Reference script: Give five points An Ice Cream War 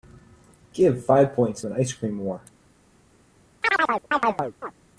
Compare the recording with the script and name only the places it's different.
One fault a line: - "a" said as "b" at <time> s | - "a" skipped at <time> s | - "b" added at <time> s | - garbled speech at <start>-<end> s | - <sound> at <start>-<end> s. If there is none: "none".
- chirp at 3.6-4.7 s